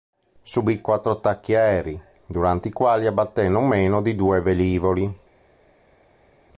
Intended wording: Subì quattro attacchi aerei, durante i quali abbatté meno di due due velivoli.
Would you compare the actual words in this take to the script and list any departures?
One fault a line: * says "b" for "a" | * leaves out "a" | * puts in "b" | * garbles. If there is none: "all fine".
* puts in "non"
* leaves out "due"